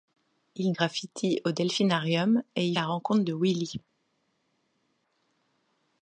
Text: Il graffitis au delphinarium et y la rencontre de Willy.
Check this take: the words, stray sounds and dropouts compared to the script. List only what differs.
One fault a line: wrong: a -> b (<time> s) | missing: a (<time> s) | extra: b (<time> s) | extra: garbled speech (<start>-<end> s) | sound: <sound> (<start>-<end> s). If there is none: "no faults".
no faults